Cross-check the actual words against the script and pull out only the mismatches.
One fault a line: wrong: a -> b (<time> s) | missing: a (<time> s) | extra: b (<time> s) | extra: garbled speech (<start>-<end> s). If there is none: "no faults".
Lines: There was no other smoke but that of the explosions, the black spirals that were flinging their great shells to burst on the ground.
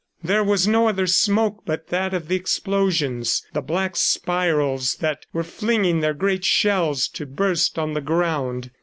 no faults